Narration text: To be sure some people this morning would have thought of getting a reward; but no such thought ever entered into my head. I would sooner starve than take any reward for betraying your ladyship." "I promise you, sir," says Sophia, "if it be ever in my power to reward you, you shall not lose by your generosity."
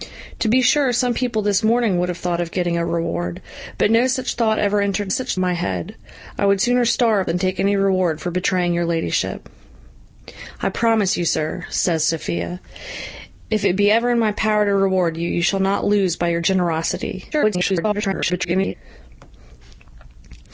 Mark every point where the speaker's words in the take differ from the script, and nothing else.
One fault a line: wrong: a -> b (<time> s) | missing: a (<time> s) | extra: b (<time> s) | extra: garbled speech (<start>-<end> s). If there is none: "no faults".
wrong: into -> such (5.1 s)
extra: garbled speech (17.3-18.7 s)